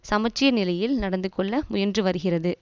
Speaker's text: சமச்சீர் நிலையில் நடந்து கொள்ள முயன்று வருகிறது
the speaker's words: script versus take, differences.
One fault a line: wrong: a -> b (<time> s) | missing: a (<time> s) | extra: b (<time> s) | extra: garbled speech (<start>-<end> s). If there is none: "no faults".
no faults